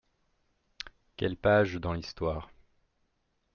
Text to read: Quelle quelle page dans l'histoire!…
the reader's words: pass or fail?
fail